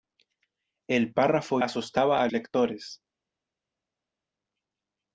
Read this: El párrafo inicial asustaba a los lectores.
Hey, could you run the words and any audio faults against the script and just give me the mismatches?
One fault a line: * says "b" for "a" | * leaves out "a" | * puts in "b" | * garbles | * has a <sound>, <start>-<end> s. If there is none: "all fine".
* leaves out "inicial"
* leaves out "los"